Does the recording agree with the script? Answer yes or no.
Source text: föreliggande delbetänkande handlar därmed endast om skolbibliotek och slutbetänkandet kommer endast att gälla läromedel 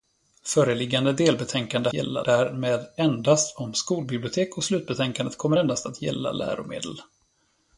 no